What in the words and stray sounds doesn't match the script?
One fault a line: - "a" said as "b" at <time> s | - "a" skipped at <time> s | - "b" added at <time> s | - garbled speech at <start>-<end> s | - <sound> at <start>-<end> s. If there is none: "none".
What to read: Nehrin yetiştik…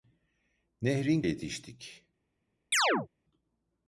- chirp at 2.7-3.1 s